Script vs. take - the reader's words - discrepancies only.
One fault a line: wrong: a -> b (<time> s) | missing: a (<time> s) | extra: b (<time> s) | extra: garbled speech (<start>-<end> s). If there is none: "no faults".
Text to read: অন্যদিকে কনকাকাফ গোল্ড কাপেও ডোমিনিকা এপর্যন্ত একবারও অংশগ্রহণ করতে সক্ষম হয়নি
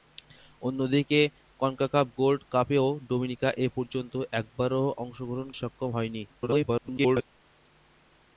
missing: করতে (5.5 s)
extra: garbled speech (6.3-7.3 s)